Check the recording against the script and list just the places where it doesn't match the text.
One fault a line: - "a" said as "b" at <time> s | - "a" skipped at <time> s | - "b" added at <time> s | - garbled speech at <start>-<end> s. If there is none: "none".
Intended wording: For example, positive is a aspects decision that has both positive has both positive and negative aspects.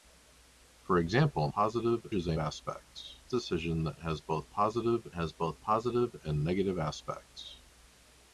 none